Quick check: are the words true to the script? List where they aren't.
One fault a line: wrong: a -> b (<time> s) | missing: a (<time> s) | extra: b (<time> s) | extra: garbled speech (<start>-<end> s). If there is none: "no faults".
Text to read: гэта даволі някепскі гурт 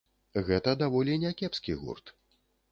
no faults